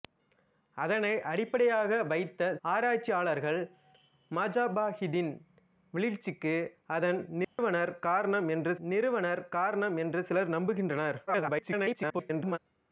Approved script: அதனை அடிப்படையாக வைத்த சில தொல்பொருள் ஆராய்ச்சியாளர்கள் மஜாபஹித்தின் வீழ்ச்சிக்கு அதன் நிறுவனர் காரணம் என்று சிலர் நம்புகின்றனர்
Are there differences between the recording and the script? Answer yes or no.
yes